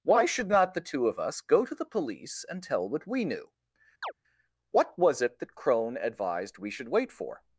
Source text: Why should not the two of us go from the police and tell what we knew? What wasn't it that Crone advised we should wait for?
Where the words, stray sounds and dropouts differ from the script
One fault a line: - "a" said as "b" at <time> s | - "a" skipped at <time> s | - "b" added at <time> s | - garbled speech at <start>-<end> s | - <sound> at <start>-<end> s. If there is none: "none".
- "from" said as "to" at 1.6 s
- chirp at 4.0-4.1 s
- "wasn't" said as "was" at 5.0 s